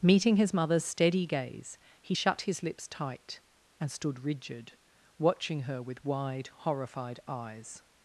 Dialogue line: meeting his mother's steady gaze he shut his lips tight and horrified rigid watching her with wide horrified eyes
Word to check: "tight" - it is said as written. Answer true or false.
true